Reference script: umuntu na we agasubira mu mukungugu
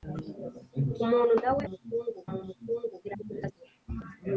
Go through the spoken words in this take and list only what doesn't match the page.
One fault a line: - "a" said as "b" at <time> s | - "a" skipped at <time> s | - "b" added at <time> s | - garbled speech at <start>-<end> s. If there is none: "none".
- "agasubira" said as "mukungugu" at 1.7 s
- garbled speech at 3.0-3.5 s